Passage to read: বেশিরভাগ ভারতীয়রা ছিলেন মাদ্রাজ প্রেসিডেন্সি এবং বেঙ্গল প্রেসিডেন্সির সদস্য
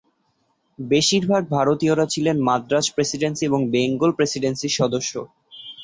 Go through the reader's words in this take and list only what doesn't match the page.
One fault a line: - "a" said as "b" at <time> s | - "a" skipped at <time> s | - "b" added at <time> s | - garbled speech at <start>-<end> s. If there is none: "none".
none